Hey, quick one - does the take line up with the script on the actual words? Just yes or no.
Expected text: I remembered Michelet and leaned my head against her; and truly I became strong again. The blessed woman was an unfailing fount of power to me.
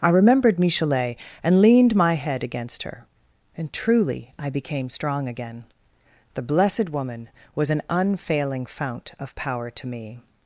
yes